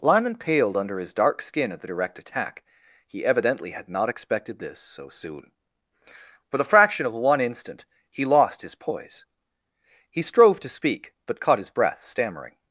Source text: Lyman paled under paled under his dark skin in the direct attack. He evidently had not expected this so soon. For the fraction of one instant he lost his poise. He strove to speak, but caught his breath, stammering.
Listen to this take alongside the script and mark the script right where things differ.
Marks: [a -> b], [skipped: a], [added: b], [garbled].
Lyman paled under [skipped: paled under] his dark skin [in -> at] the direct attack. He evidently had not expected this so soon. For the fraction of one instant he lost his poise. He strove to speak, but caught his breath, stammering.